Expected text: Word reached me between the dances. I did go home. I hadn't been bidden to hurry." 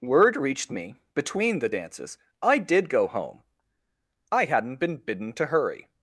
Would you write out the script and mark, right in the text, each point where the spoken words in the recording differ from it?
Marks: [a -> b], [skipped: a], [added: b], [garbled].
Word reached me between the dances. I did go home. I hadn't been bidden to hurry."